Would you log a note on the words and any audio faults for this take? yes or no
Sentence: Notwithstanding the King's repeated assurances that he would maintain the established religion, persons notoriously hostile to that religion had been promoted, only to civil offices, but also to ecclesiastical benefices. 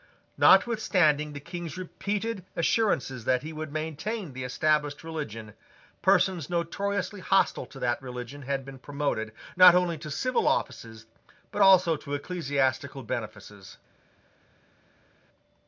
yes